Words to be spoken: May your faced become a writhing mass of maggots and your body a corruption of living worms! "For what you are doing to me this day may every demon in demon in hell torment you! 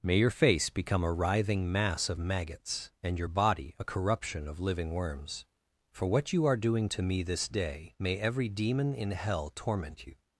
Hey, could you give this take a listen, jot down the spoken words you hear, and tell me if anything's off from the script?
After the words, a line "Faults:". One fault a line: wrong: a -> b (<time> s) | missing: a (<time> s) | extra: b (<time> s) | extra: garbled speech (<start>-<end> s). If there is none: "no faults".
May your face become a writhing mass of maggots and your body a corruption of living worms! "For what you are doing to me this day may every demon in hell torment you!
Faults:
wrong: faced -> face (0.3 s)
missing: demon in (9.1 s)